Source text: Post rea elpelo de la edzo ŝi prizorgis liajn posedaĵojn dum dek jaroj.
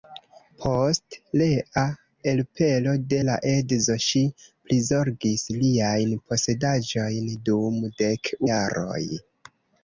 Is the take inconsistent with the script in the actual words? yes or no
no